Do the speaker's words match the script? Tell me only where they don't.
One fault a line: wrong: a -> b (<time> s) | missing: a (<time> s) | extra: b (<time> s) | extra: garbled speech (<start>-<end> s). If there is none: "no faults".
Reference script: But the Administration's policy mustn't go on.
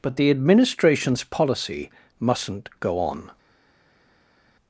no faults